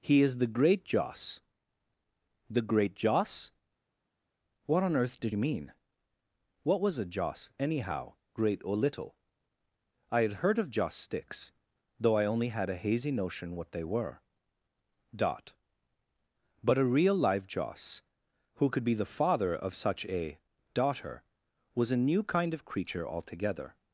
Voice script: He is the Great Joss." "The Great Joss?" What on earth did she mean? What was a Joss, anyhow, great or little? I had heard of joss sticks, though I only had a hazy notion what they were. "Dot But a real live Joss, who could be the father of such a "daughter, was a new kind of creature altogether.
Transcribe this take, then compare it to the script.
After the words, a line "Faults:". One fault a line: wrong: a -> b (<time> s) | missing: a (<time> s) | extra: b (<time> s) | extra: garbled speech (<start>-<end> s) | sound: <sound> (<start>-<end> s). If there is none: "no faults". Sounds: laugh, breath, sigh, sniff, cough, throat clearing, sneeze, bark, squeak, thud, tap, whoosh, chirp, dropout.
He is the Great Joss." "The Great Joss?" What on earth did mean? What was a Joss, anyhow, great or little? I had heard of joss sticks, though I only had a hazy notion what they were. "Dot But a real live Joss, who could be the father of such a "daughter, was a new kind of creature altogether.
Faults:
missing: she (5.3 s)